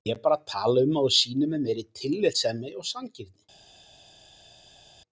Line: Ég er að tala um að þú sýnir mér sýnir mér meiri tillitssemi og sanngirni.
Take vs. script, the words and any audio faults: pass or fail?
fail